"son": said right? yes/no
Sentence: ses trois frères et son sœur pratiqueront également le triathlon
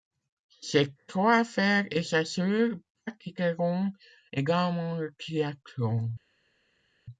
no